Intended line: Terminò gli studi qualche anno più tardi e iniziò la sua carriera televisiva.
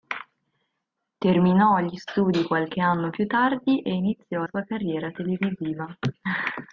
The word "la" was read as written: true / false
false